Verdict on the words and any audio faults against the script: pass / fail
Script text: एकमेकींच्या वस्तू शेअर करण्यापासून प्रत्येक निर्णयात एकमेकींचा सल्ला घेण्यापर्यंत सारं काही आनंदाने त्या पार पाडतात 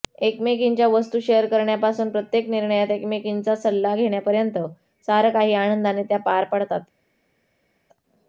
pass